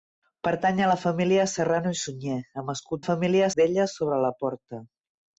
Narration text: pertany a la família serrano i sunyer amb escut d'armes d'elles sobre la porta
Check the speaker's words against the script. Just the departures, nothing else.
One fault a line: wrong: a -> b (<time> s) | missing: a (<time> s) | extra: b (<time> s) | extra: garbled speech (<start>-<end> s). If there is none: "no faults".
wrong: d'armes -> família (3.0 s)